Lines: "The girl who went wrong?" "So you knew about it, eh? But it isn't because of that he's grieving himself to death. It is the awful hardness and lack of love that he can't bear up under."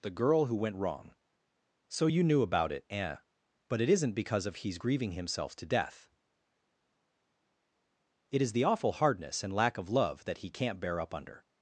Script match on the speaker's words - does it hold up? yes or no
no